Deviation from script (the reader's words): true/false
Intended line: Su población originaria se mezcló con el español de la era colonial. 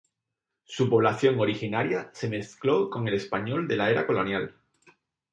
false